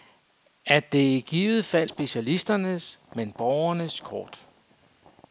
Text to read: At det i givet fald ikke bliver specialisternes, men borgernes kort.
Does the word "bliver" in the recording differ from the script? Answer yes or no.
yes